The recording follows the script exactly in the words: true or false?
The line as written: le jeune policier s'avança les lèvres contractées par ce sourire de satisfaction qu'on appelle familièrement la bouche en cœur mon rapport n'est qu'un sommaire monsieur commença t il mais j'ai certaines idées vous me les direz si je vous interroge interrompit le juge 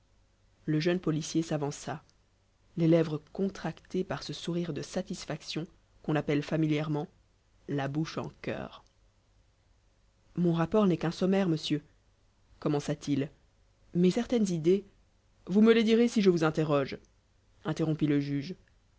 false